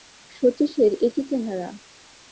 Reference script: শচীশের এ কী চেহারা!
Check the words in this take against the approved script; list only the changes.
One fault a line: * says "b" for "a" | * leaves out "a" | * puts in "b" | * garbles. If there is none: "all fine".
all fine